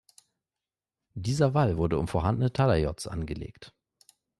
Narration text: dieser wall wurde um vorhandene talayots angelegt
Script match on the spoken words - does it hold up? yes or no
yes